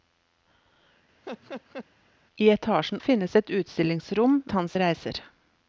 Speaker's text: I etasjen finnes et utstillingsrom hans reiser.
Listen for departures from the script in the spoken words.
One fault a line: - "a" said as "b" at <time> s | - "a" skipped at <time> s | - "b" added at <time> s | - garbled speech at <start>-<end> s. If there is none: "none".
none